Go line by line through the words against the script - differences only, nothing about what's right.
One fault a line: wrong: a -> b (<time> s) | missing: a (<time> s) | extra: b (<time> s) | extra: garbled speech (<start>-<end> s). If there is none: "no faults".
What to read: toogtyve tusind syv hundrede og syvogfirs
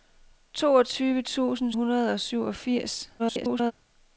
missing: syv (1.7 s)
extra: garbled speech (3.2-3.7 s)